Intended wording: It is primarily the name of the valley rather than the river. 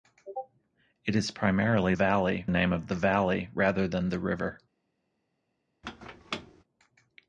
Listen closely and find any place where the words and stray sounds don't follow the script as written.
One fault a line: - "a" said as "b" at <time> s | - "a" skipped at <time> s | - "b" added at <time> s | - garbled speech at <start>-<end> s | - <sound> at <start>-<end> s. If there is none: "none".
- "the" said as "valley" at 1.9 s
- squeak at 5.8-6.6 s